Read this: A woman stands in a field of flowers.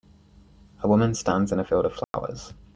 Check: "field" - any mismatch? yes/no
no